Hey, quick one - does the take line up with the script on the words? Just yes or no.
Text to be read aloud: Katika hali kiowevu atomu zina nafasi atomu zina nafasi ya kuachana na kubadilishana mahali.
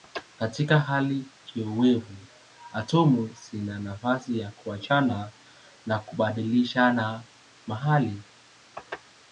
no